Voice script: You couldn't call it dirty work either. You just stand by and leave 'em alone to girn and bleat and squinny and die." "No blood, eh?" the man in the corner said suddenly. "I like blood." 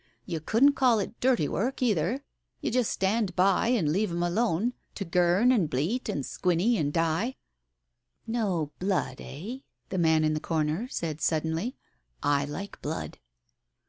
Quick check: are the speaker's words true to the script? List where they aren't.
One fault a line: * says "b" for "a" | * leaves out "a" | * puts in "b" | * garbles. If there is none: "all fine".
all fine